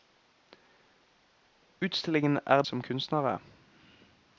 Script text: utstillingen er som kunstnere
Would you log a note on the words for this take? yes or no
no